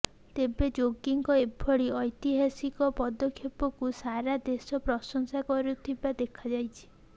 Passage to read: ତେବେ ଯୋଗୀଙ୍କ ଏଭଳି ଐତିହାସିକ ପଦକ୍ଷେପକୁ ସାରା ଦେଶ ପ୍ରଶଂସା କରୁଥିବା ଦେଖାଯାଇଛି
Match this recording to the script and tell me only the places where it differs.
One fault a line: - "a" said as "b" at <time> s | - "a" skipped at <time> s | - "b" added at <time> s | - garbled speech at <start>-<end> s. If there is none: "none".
none